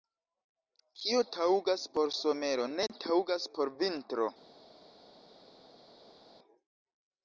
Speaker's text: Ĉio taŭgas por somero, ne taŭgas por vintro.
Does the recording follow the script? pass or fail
fail